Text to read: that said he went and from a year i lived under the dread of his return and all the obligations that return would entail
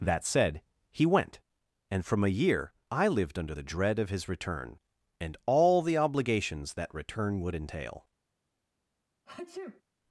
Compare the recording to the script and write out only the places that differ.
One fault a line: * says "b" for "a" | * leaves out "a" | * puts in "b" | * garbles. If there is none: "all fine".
all fine